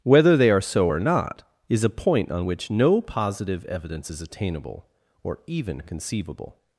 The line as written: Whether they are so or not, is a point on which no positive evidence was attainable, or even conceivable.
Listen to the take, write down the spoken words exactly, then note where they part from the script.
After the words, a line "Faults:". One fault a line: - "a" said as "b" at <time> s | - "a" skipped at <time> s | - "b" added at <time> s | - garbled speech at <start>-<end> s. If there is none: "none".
Whether they are so or not, is a point on which no positive evidence is attainable, or even conceivable.
Faults:
- "was" said as "is" at 4.1 s